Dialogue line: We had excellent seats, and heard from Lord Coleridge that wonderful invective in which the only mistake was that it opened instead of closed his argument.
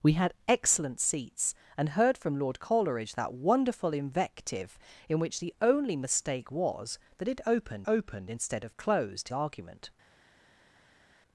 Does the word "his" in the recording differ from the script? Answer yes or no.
yes